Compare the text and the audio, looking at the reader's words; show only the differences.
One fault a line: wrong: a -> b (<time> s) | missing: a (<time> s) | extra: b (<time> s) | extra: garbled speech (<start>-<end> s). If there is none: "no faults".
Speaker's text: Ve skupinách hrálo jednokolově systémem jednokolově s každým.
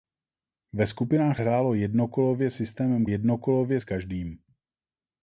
no faults